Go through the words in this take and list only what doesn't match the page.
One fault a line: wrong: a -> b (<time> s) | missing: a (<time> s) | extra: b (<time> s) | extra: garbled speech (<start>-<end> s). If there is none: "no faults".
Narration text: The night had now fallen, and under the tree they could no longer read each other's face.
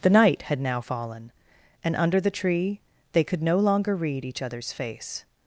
no faults